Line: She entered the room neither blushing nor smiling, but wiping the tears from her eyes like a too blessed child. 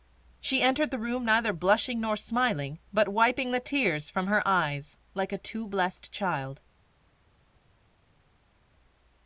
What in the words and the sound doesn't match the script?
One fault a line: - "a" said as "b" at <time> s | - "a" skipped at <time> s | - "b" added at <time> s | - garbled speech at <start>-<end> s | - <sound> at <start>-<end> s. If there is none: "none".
none